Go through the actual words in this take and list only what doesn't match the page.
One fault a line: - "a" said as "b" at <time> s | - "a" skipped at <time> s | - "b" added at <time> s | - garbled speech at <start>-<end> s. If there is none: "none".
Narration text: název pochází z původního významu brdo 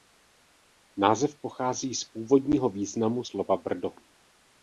- "slova" added at 3.2 s